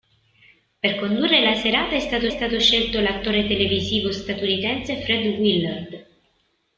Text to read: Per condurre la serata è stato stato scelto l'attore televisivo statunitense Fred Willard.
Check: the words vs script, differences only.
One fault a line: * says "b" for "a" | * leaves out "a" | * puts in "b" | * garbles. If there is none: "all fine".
all fine